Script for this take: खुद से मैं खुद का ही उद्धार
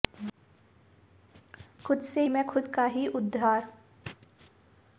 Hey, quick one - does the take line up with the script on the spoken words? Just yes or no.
yes